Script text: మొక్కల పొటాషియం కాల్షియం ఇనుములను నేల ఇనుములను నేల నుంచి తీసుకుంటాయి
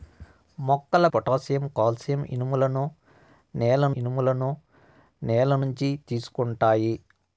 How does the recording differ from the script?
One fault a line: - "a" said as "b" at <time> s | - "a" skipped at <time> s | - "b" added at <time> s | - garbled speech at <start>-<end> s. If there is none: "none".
none